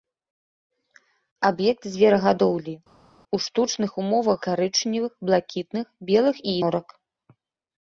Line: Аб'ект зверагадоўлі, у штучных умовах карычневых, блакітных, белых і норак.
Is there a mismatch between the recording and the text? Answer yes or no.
no